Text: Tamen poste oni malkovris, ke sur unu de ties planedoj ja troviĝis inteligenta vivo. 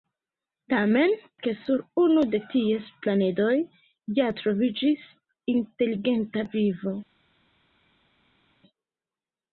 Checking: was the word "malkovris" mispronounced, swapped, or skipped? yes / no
yes